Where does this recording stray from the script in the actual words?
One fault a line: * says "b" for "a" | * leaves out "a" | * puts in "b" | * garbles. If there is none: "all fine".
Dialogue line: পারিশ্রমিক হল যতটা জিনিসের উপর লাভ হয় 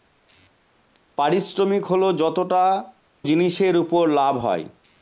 all fine